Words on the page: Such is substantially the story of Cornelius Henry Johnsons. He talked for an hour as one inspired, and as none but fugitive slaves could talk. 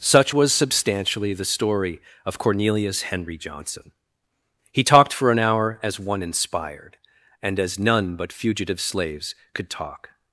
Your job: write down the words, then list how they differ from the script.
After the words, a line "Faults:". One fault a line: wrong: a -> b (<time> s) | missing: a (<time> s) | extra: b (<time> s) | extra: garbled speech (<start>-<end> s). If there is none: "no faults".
Such was substantially the story of Cornelius Henry Johnson. He talked for an hour as one inspired, and as none but fugitive slaves could talk.
Faults:
wrong: is -> was (0.3 s)
wrong: Johnsons -> Johnson (3.4 s)